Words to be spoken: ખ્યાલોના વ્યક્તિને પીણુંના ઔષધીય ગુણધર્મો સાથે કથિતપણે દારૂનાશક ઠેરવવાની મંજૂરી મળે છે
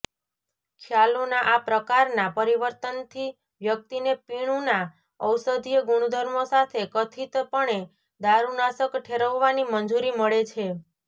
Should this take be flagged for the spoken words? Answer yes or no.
yes